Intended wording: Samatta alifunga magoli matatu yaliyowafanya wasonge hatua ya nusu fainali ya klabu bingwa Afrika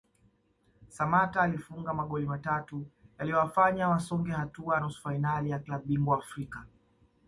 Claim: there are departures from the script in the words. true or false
false